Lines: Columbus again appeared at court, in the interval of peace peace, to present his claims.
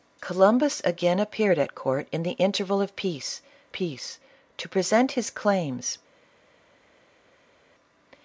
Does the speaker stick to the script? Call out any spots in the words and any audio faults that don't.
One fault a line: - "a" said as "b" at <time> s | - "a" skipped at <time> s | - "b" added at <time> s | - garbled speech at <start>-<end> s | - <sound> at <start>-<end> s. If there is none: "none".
none